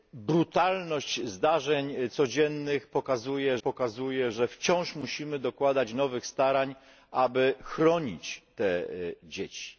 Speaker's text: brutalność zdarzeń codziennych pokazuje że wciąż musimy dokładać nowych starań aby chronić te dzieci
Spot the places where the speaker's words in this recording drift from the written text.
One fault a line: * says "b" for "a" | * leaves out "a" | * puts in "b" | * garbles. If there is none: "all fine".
* puts in "pokazuje"